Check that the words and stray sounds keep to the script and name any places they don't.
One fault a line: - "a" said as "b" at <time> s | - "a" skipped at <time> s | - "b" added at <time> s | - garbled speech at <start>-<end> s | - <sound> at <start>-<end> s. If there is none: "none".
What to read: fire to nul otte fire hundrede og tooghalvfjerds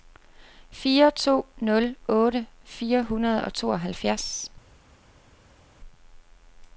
none